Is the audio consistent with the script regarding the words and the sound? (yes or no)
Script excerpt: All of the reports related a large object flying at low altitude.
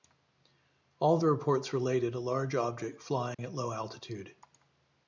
no